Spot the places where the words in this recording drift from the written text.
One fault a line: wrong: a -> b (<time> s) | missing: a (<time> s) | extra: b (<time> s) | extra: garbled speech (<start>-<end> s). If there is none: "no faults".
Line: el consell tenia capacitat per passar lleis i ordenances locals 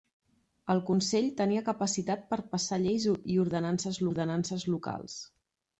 extra: ordenances (4.1 s)